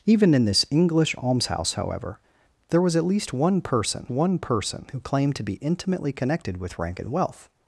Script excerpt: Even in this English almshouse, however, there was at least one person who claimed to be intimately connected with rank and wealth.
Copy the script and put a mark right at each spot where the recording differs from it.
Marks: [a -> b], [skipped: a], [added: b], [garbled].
Even in this English almshouse, however, there was at least one person [added: one person] who claimed to be intimately connected with rank and wealth.